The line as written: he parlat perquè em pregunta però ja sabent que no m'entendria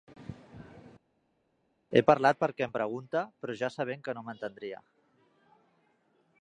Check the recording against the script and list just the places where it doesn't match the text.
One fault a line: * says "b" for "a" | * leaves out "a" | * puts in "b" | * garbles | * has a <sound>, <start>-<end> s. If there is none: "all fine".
all fine